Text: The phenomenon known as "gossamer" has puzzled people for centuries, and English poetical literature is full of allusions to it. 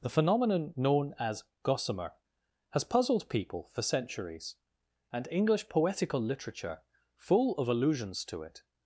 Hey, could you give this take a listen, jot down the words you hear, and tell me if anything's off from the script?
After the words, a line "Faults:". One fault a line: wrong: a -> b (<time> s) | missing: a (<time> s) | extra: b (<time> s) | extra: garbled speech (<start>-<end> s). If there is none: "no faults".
The phenomenon known as "gossamer" has puzzled people for centuries, and English poetical literature full of allusions to it.
Faults:
missing: is (6.8 s)